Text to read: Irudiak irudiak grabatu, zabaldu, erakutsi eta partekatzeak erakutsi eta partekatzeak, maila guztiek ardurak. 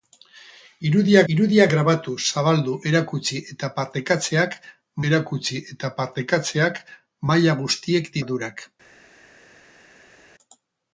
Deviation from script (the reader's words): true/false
false